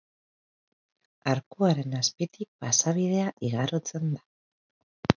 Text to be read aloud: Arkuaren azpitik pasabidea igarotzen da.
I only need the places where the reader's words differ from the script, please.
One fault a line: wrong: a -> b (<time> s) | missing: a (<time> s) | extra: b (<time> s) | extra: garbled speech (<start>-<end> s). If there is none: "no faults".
no faults